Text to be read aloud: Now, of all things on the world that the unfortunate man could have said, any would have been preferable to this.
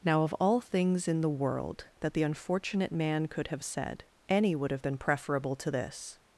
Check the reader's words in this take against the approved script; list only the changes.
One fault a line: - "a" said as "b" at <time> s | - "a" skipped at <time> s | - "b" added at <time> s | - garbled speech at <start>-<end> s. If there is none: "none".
- "on" said as "in" at 1.1 s